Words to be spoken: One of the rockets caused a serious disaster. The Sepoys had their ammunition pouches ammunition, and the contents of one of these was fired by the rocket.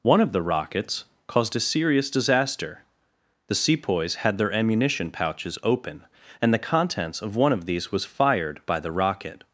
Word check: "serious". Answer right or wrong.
right